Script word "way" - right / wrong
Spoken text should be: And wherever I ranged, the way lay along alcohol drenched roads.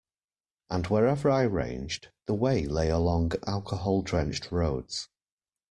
right